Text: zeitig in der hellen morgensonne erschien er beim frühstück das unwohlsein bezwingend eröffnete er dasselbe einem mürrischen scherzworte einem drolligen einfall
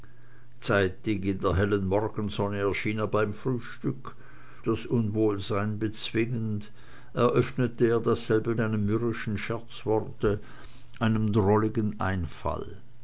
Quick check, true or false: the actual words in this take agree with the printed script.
true